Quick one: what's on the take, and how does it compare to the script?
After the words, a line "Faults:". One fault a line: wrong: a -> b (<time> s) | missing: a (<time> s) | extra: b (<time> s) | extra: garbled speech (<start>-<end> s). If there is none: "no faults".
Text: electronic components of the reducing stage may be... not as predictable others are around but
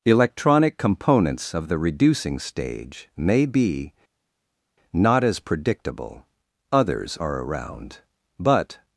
electronic components of the reducing stage may be... not as predictable others are around but
Faults:
no faults